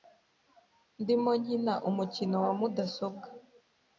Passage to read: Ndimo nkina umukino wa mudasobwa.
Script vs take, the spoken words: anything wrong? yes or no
no